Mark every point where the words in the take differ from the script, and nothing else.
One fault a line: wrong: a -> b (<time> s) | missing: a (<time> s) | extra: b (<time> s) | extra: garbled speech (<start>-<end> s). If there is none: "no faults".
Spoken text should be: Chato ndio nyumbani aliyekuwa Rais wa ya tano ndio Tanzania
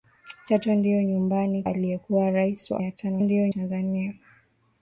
no faults